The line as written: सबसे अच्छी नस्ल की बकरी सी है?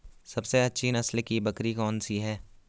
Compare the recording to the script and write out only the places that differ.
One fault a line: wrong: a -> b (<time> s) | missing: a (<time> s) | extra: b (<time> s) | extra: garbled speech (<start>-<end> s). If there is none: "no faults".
extra: कौन (1.7 s)